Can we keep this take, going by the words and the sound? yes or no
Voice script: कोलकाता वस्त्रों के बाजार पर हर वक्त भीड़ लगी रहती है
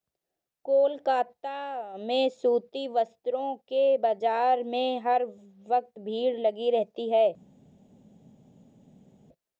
no